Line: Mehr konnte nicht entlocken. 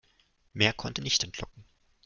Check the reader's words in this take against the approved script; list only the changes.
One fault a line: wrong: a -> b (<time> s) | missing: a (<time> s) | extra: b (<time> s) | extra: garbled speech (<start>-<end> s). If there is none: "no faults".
no faults